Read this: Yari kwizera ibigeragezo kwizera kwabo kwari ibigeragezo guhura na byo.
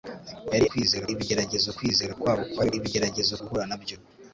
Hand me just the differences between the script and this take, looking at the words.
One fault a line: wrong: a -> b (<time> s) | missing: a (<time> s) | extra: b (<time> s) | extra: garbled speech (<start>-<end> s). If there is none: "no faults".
no faults